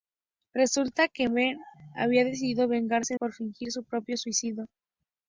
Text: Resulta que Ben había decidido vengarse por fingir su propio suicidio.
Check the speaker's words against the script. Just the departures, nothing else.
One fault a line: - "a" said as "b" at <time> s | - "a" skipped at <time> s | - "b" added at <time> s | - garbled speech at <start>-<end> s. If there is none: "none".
none